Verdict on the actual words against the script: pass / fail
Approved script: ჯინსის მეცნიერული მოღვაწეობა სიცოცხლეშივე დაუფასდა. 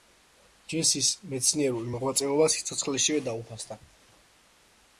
pass